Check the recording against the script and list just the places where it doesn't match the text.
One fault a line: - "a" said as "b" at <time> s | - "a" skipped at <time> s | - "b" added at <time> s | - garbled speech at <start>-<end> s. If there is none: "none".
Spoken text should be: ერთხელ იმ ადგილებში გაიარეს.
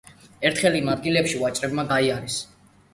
- "ვაჭრებმა" added at 1.4 s